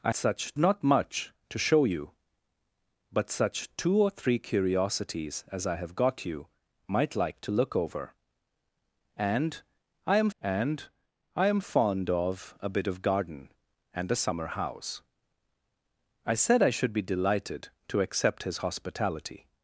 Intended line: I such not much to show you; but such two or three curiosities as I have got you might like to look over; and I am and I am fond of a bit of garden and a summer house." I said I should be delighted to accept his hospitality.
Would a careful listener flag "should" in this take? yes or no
no